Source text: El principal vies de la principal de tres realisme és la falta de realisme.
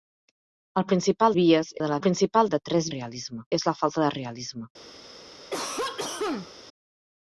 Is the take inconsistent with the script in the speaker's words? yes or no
no